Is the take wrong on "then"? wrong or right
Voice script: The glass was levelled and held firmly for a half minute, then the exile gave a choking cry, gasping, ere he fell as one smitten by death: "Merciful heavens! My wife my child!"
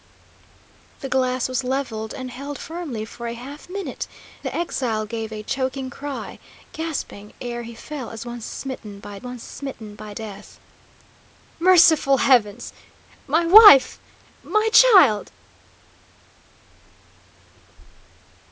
wrong